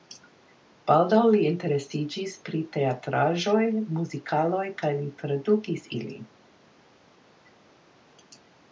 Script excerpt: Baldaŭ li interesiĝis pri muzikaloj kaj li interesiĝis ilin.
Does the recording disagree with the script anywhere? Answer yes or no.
yes